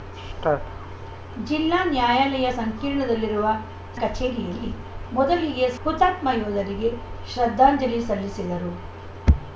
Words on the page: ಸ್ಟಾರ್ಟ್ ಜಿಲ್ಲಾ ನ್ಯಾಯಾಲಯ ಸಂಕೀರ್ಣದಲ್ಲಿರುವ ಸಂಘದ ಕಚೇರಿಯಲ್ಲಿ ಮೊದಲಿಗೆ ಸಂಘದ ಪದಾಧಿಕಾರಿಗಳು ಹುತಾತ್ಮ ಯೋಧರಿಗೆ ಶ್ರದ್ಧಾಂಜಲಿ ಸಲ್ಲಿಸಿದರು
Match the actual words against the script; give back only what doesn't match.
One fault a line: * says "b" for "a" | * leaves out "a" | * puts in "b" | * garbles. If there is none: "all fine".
* leaves out "ಸಂಘದ"
* leaves out "ಸಂಘದ ಪದಾಧಿಕಾರಿಗಳು"